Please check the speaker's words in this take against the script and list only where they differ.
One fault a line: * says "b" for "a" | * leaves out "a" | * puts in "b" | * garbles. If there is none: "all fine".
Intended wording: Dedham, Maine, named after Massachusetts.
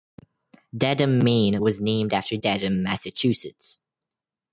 * puts in "was"
* puts in "Dedham"